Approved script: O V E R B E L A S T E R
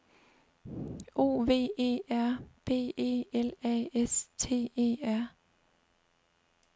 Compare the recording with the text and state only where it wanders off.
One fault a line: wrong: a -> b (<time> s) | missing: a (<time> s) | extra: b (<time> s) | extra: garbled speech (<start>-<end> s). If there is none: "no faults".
no faults